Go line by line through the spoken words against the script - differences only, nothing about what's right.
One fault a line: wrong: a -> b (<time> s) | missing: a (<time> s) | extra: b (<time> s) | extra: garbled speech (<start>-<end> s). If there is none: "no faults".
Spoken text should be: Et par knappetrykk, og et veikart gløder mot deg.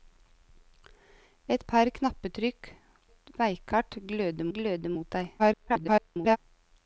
missing: og (2.7 s)
extra: gløder (4.6 s)
extra: garbled speech (5.4-6.4 s)